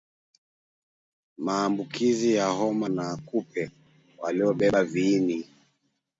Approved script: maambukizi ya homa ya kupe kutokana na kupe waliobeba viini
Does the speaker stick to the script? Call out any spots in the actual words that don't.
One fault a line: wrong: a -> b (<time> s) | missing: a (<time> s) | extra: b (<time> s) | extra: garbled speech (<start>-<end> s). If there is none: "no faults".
missing: ya kupe kutokana (2.9 s)